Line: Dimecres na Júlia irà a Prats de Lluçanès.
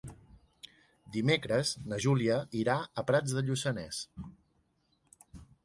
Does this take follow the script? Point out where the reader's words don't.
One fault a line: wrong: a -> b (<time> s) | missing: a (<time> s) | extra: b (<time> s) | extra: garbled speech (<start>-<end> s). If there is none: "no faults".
no faults